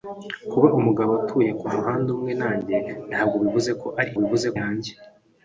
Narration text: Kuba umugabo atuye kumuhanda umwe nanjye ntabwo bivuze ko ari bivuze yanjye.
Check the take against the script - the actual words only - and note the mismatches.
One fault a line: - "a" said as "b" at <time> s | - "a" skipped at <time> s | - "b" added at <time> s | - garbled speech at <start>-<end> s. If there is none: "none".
none